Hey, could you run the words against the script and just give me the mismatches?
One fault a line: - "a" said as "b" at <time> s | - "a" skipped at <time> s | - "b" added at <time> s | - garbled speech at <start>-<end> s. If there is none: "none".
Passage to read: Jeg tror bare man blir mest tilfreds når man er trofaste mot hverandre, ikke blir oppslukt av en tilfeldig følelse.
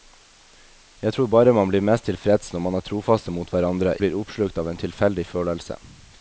- "ikke" skipped at 4.0 s